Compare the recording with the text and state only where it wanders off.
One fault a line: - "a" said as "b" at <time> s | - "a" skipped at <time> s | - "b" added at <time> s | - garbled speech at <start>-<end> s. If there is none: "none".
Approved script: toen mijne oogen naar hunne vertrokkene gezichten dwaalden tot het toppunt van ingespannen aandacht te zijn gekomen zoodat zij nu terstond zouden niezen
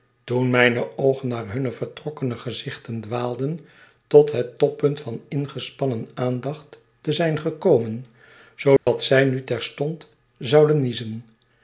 none